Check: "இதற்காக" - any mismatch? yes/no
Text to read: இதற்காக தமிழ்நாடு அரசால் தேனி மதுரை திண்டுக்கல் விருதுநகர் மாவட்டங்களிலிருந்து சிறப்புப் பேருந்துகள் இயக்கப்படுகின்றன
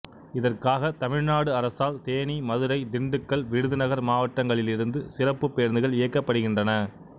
no